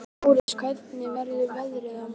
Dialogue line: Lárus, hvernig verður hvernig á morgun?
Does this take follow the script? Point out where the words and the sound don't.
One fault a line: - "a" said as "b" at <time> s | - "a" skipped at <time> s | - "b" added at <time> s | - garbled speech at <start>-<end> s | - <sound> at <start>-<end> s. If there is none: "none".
- dropout at 0.4-0.5 s
- "hvernig" said as "veðrið" at 1.5 s